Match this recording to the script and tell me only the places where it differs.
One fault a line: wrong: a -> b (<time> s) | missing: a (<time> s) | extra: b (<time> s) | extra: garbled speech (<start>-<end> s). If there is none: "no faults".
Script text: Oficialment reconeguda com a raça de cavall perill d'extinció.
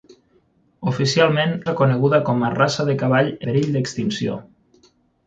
no faults